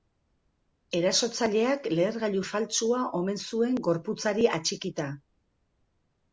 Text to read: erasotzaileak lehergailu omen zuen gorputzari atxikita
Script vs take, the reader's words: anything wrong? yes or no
yes